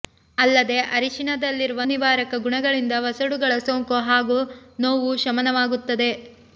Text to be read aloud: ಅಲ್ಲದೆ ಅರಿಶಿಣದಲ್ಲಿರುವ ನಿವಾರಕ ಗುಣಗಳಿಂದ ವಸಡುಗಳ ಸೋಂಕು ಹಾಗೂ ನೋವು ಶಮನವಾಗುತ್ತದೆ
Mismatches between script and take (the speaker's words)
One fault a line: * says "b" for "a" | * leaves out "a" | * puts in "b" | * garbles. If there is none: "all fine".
all fine